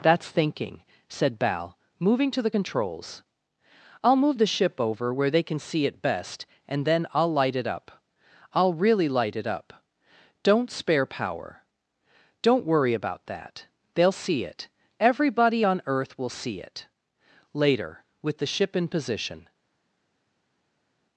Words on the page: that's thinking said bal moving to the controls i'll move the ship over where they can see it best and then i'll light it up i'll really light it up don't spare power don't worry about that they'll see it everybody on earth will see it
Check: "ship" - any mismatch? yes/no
no